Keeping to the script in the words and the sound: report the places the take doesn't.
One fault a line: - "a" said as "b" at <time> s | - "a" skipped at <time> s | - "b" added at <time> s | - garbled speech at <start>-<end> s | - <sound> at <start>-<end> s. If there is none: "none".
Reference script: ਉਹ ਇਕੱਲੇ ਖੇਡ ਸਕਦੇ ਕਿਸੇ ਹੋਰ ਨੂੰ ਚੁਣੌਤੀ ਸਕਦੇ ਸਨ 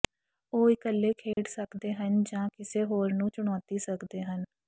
- dropout at 1.3-1.4 s
- "ਹਨ ਜਾਂ" added at 1.9 s
- "ਸਨ" said as "ਹਨ" at 4.2 s